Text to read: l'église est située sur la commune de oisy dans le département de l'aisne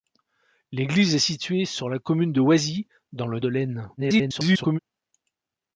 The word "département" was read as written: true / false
false